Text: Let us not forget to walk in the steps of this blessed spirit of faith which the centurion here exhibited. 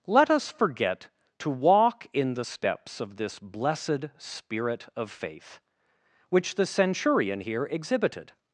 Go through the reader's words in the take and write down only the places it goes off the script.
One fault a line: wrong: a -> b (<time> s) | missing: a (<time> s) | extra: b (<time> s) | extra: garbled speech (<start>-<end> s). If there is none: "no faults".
missing: not (0.5 s)